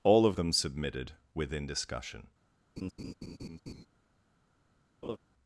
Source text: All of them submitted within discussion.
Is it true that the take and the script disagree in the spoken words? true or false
false